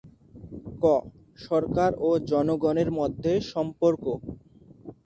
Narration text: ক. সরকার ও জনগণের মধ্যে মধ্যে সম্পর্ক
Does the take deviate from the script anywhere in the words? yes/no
yes